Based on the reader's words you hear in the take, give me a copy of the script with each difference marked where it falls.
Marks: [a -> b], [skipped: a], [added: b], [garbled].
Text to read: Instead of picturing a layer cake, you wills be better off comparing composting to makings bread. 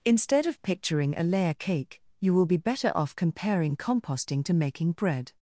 Instead of picturing a layer cake, you [wills -> will] be better off comparing composting to [makings -> making] bread.